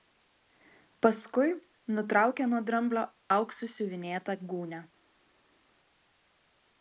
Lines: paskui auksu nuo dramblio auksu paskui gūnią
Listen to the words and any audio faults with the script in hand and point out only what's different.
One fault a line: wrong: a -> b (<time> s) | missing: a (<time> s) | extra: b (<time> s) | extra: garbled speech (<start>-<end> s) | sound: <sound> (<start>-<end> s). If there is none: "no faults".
wrong: auksu -> nutraukė (2.0 s)
wrong: paskui -> siuvinėtą (3.8 s)